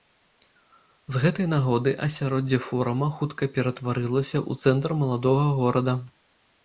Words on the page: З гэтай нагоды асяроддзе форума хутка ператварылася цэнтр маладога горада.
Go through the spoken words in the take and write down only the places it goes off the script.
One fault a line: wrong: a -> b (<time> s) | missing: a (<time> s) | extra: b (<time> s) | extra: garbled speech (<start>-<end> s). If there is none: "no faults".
extra: ў (4.5 s)